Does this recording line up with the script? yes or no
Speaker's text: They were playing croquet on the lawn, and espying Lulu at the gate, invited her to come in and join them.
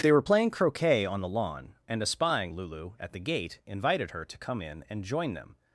yes